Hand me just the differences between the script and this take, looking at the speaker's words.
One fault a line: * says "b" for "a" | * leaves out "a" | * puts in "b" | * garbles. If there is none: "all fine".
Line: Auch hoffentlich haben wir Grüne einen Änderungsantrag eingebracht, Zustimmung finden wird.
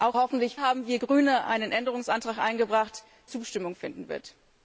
all fine